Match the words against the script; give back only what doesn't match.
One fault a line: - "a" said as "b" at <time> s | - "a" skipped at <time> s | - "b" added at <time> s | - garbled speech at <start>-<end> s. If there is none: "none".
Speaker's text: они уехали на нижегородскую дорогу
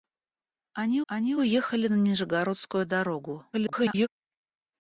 - "они" added at 1.1 s
- garbled speech at 3.5-4.1 s